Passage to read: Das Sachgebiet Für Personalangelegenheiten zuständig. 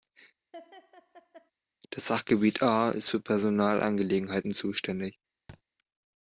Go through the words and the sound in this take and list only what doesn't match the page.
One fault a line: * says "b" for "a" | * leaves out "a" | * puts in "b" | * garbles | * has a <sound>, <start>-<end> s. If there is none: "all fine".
* has a laugh, 0.5-1.5 s
* puts in "A ist"
* has a thud, 5.5-5.6 s